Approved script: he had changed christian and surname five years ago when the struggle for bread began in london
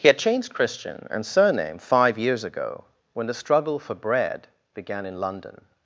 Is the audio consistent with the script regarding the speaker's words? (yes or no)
yes